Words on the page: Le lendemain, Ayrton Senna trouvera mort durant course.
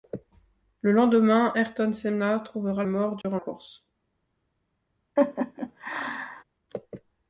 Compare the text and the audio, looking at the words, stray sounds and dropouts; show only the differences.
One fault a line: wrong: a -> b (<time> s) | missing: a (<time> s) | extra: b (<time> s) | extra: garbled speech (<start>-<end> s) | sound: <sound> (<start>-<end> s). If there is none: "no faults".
sound: dropout (3.2-3.2 s)
sound: laugh (5.2-6.4 s)